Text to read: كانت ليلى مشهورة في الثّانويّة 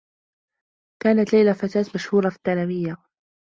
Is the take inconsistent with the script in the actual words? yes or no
yes